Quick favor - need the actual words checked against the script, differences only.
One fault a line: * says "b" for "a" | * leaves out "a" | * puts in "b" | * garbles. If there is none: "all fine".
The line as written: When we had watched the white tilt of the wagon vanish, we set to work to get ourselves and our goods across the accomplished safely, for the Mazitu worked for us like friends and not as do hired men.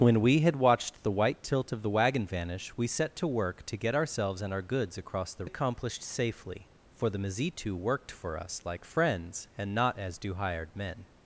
all fine